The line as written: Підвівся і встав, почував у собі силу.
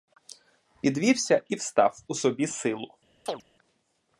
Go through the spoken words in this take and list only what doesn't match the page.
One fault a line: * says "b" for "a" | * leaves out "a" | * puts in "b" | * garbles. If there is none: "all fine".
* leaves out "почував"